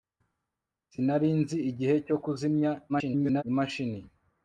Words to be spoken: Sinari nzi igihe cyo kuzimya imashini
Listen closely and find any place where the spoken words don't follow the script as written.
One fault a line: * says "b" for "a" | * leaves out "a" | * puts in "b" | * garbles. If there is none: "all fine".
* garbles